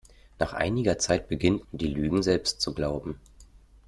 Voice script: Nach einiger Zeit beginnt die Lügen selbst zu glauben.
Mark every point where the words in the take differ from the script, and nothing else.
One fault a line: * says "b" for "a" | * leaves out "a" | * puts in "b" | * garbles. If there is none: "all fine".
all fine